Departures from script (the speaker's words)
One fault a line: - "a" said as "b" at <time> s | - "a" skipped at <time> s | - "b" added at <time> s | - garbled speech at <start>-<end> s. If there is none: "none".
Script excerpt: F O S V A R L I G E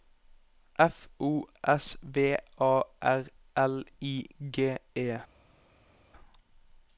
none